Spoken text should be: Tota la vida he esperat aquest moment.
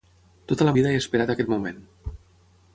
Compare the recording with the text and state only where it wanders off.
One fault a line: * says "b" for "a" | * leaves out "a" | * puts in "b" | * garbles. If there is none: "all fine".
all fine